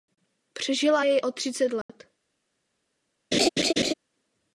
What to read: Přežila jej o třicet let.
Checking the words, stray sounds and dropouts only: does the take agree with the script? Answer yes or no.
no